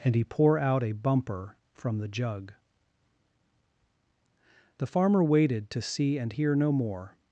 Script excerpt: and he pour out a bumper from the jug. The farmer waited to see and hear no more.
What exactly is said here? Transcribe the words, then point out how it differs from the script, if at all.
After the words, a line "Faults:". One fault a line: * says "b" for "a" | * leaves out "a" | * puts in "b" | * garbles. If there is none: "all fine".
and he pour out a bumper from the jug. The farmer waited to see and hear no more.
Faults:
all fine